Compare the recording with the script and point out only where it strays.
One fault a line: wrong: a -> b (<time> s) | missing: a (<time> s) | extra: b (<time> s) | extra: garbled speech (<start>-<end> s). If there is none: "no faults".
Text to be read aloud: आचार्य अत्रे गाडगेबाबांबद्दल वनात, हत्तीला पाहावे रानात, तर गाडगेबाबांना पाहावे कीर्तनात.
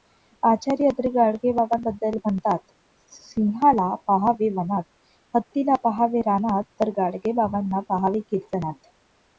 extra: म्हणतात सिंहाला पाहावे (2.2 s)